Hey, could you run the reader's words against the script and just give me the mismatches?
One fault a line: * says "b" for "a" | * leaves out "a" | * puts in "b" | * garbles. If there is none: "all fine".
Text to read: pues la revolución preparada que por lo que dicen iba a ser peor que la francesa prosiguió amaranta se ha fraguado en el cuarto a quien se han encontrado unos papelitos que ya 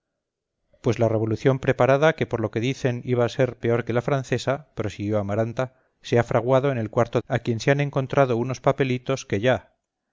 all fine